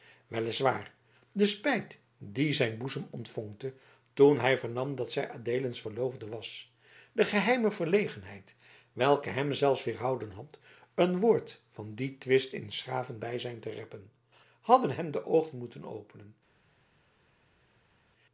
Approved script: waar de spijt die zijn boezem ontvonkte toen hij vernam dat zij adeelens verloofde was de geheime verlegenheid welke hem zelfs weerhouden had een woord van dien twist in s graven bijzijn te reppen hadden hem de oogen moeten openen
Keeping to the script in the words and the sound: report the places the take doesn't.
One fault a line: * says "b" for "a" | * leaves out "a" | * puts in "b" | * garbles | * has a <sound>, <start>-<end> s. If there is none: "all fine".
all fine